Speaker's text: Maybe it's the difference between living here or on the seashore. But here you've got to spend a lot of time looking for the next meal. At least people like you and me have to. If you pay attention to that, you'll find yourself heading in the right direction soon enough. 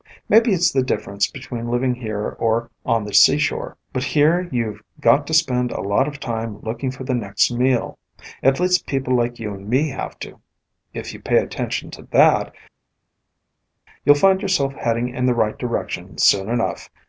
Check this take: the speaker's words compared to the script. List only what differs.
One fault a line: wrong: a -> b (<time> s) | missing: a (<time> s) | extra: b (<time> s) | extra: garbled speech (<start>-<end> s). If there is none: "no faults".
no faults